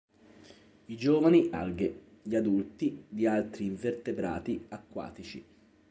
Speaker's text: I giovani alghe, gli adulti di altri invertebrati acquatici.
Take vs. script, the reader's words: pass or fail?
pass